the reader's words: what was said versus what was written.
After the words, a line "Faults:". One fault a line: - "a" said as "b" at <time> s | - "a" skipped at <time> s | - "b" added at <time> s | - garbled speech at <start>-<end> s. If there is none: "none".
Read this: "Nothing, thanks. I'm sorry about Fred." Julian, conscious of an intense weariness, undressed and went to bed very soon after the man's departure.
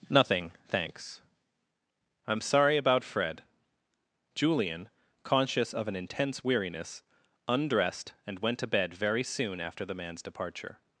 "Nothing, thanks. I'm sorry about Fred." Julian, conscious of an intense weariness, undressed and went to bed very soon after the man's departure.
Faults:
none